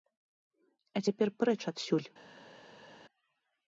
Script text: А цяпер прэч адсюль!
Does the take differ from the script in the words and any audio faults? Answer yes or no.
no